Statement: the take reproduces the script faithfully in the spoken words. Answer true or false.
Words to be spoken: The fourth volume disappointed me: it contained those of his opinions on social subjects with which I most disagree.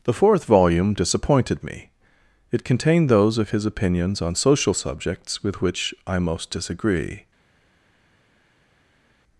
true